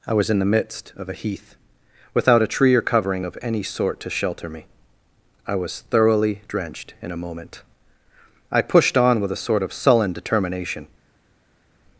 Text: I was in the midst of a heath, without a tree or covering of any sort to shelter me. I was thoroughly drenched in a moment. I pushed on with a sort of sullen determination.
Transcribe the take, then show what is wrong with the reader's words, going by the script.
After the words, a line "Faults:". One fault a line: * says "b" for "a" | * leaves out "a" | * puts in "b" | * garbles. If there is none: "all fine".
I was in the midst of a heath, without a tree or covering of any sort to shelter me. I was thoroughly drenched in a moment. I pushed on with a sort of sullen determination.
Faults:
all fine